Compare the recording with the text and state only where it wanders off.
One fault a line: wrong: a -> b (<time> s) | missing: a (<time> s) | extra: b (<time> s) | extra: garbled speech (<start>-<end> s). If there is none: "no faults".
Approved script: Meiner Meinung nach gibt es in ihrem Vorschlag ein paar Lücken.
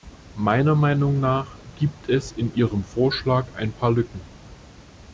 no faults